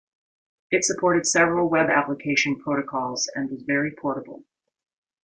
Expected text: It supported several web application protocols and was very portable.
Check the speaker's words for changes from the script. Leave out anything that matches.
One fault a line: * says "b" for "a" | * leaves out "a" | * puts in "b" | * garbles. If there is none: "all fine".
all fine